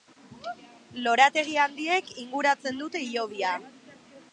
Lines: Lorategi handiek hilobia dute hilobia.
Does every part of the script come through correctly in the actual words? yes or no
no